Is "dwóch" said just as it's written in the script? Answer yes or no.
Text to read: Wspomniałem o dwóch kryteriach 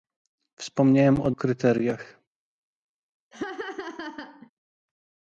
no